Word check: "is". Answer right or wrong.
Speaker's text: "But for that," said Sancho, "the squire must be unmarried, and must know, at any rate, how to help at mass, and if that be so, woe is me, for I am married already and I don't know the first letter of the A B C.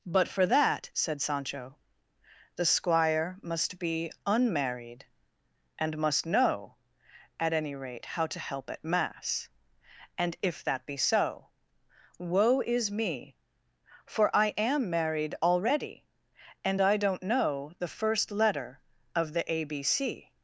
right